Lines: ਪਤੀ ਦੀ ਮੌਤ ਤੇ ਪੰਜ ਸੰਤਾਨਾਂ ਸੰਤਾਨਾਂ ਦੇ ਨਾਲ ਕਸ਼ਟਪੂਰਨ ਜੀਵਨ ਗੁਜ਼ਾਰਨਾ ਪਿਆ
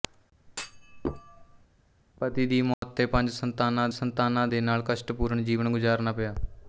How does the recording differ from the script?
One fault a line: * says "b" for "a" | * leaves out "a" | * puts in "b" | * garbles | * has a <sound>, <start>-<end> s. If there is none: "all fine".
* has a thud, 0.5-1.7 s
* has a dropout, 2.7-2.8 s